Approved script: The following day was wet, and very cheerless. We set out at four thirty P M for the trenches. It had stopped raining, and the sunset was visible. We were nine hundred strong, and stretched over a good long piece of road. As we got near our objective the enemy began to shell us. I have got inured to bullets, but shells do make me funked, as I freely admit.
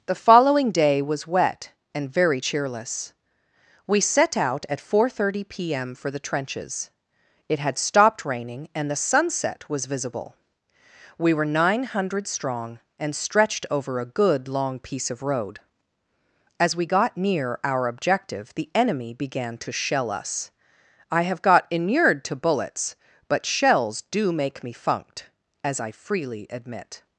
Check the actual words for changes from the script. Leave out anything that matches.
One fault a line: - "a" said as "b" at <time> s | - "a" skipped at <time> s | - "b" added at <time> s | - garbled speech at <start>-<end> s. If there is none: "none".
none